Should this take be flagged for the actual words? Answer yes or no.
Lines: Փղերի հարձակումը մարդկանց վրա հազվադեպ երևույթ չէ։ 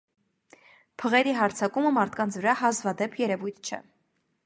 no